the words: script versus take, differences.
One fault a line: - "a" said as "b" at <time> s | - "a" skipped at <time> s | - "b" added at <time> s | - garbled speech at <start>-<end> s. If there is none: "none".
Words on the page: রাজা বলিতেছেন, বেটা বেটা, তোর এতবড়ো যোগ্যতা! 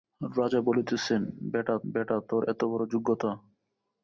none